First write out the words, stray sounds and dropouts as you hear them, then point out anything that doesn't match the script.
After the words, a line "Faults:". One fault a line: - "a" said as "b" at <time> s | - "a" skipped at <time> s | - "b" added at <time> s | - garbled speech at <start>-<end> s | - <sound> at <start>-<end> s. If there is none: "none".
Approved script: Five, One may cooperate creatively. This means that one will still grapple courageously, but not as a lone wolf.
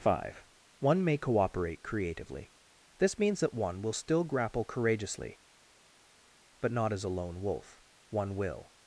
Five, One may cooperate creatively. This means that one will still grapple courageously, but not as a lone wolf. One will.
Faults:
- "One will" added at 8.1 s